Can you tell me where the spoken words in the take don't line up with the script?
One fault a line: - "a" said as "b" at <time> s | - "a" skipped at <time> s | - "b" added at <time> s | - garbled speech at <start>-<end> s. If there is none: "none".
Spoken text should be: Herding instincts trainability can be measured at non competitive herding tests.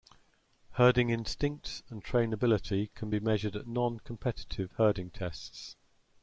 - "and" added at 1.9 s